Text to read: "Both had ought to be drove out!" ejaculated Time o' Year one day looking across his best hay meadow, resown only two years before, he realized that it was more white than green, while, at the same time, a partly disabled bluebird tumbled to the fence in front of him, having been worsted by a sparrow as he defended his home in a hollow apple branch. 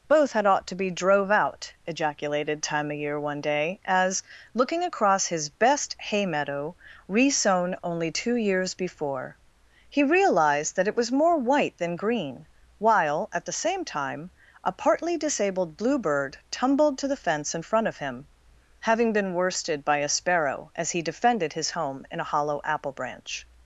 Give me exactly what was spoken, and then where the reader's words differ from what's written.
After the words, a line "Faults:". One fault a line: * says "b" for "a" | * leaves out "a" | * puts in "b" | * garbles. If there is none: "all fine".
"Both had ought to be drove out!" ejaculated Time o' Year one day as, looking across his best hay meadow, resown only two years before, he realized that it was more white than green, while, at the same time, a partly disabled bluebird tumbled to the fence in front of him, having been worsted by a sparrow as he defended his home in a hollow apple branch.
Faults:
* puts in "as"